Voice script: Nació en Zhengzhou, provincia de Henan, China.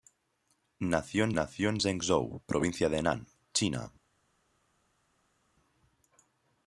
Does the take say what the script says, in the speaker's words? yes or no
no